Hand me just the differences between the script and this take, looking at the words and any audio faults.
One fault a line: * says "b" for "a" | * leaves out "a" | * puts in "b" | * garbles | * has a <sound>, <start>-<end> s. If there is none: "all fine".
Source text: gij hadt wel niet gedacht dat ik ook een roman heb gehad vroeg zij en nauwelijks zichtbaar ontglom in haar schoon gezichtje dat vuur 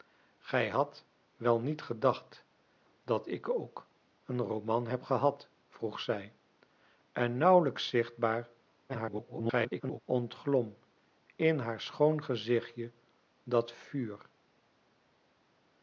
* garbles